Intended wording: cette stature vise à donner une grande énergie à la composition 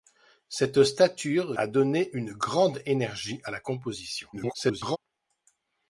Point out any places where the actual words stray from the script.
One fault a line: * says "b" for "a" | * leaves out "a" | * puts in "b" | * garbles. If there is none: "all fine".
* leaves out "vise"
* garbles